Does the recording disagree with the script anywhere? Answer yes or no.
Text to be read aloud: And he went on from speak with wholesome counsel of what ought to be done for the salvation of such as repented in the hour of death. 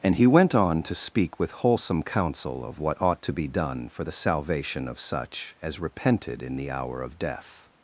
yes